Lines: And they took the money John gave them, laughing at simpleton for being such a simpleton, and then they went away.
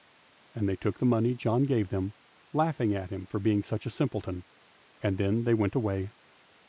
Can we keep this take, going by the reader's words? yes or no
no